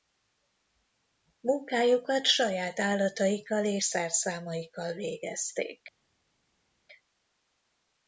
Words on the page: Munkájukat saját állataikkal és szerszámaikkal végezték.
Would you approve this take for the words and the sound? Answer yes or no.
yes